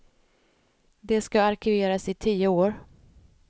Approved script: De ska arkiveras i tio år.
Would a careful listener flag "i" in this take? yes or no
no